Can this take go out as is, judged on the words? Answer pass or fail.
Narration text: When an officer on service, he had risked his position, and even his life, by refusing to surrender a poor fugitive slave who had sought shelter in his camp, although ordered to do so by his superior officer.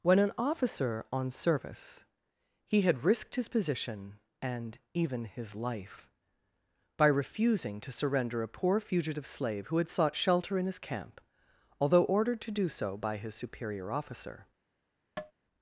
pass